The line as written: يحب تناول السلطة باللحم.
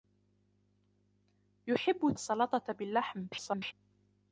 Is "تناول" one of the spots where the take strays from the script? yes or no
yes